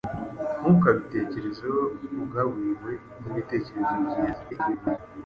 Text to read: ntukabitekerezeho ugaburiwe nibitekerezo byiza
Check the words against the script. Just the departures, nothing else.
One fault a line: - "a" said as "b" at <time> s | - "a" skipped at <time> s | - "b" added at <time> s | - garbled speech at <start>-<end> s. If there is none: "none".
- garbled speech at 4.5-5.0 s